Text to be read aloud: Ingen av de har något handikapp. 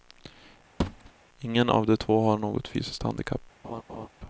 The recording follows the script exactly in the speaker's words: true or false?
false